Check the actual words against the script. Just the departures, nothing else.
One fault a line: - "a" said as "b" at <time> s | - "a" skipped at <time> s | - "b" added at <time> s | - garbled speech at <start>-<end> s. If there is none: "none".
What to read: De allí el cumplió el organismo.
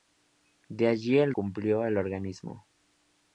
none